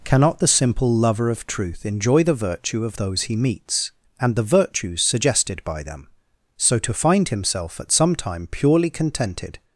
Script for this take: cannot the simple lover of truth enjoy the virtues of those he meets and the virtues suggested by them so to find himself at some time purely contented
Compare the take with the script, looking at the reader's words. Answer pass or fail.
fail